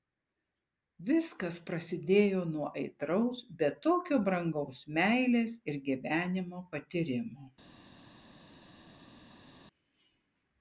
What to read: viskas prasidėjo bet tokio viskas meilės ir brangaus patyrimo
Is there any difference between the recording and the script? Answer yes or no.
yes